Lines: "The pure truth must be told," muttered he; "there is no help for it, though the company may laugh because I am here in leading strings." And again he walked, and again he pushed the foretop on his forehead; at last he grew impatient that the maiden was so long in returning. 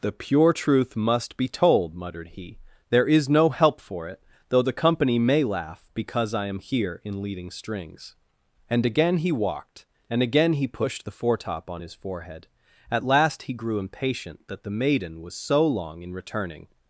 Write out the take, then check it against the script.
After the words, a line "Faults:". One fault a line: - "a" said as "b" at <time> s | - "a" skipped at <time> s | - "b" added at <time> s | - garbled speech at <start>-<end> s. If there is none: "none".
"The pure truth must be told," muttered he; "there is no help for it, though the company may laugh because I am here in leading strings." And again he walked, and again he pushed the foretop on his forehead; at last he grew impatient that the maiden was so long in returning.
Faults:
none